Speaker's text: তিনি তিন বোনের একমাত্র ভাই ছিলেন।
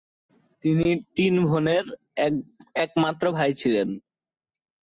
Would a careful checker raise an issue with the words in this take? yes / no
no